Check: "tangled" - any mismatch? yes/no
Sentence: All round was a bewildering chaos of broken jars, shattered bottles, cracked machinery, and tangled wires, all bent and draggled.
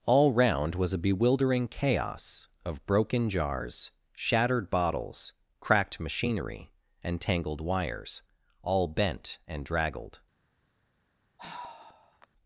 no